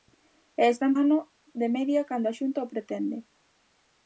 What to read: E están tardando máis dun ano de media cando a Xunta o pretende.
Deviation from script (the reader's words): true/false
true